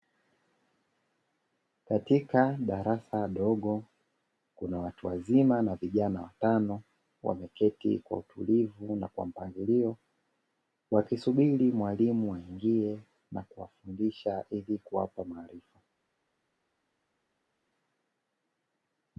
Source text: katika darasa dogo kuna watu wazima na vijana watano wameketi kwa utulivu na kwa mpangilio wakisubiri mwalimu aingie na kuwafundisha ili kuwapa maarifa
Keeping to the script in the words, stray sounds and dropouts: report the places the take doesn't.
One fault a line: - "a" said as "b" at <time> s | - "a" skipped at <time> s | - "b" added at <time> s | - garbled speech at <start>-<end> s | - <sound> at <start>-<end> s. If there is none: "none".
none